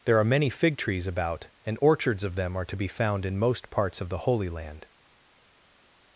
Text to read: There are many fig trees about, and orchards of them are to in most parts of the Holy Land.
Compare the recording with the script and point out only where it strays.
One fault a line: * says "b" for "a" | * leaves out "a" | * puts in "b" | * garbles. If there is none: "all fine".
* puts in "be found"